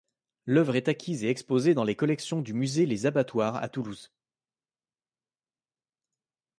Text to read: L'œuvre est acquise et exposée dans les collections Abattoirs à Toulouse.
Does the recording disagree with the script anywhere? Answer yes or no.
yes